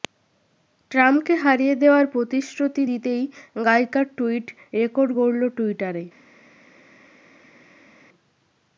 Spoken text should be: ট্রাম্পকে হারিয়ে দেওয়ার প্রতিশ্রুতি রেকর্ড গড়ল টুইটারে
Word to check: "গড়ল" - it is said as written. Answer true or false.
true